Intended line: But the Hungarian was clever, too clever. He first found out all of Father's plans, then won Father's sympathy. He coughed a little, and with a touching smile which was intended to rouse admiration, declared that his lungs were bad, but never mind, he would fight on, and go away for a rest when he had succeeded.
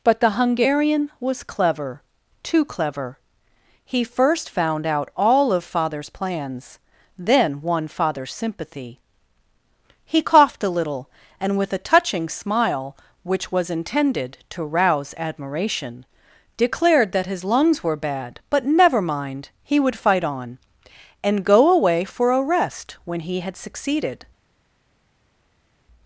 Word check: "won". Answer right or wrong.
right